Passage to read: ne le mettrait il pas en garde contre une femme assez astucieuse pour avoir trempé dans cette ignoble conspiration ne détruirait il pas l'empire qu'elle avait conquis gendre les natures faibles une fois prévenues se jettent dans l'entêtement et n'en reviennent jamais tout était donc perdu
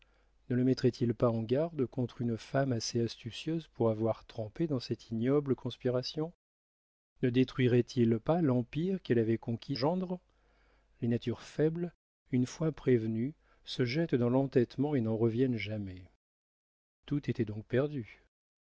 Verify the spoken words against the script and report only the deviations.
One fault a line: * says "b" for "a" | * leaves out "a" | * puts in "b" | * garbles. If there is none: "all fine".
all fine